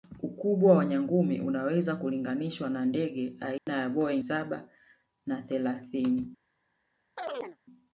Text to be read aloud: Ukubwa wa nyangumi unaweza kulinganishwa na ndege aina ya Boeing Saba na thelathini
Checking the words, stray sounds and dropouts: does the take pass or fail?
fail